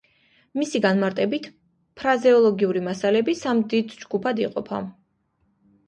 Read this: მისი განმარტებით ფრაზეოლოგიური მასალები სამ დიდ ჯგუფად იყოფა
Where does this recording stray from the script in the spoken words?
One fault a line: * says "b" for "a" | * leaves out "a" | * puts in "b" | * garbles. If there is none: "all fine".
all fine